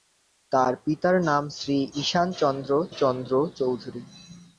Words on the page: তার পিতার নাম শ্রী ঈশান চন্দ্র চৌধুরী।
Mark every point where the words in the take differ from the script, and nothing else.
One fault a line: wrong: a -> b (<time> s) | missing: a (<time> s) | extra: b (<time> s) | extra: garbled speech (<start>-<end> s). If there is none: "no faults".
extra: চন্দ্র (2.9 s)